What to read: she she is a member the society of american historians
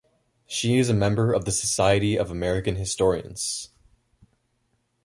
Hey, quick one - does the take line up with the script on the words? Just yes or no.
no